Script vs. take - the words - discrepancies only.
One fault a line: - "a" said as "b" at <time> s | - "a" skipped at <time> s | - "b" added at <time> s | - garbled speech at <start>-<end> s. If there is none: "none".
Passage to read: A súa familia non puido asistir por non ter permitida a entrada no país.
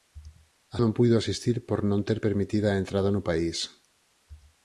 - "súa familia" skipped at 0.8 s